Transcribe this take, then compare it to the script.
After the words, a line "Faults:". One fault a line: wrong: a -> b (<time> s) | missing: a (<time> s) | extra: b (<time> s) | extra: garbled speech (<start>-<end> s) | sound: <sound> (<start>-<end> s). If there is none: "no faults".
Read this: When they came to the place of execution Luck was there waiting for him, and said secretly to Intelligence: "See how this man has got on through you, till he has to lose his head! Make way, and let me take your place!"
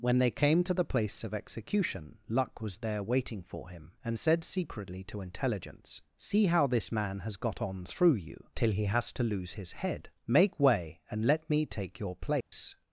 When they came to the place of execution Luck was there waiting for him, and said secretly to Intelligence: "See how this man has got on through you, till he has to lose his head! Make way, and let me take your place!"
Faults:
sound: dropout (12.4-12.5 s)